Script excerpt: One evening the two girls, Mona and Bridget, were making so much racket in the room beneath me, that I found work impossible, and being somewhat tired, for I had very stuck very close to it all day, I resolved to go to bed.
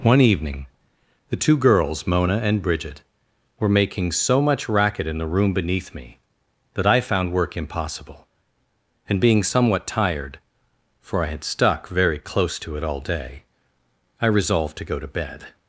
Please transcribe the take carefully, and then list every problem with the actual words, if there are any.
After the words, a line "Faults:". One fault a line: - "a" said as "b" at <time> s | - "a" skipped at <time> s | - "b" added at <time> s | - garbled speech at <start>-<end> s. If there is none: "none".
One evening the two girls, Mona and Bridget, were making so much racket in the room beneath me, that I found work impossible, and being somewhat tired, for I had stuck very close to it all day, I resolved to go to bed.
Faults:
- "very" skipped at 11.4 s